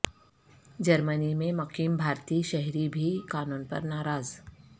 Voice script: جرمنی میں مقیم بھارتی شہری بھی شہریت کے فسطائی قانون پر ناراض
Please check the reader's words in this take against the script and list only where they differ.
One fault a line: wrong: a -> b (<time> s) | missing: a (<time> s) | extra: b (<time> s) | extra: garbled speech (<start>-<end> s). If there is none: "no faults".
missing: شہریت کے فسطائی (3.1 s)